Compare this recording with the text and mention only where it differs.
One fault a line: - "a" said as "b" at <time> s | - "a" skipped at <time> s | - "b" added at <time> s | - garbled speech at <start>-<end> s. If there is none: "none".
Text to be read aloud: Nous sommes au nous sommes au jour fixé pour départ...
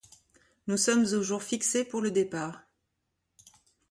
- "nous sommes au" skipped at 1.2 s
- "le" added at 2.0 s